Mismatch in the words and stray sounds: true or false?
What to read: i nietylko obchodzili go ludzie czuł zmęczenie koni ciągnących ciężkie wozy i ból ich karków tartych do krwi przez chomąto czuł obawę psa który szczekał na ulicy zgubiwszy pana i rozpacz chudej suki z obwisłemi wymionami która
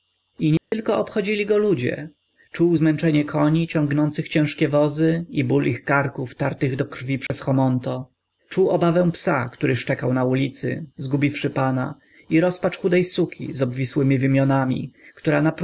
true